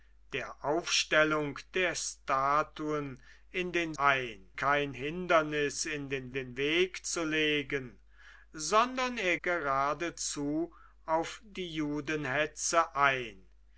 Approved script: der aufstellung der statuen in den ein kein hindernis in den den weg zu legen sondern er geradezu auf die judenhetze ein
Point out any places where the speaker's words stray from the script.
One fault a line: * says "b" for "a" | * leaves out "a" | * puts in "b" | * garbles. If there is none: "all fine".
all fine